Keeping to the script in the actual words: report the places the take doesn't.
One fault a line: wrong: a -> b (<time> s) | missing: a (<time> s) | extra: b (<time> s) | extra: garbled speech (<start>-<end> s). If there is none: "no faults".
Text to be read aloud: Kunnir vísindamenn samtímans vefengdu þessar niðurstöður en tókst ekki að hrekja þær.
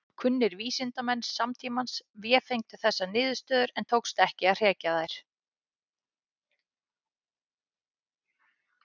no faults